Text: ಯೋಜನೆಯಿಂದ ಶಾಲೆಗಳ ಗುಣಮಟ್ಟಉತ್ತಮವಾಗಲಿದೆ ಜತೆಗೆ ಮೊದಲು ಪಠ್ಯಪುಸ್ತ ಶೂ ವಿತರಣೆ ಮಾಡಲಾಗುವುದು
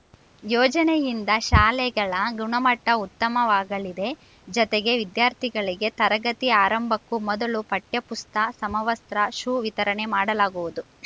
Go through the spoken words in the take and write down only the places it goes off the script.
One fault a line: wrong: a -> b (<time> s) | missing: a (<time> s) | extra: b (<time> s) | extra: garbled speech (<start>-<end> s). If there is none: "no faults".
extra: ವಿದ್ಯಾರ್ಥಿಗಳಿಗೆ ತರಗತಿ ಆರಂಭಕ್ಕೂ (5.0 s)
extra: ಸಮವಸ್ತ್ರ (8.6 s)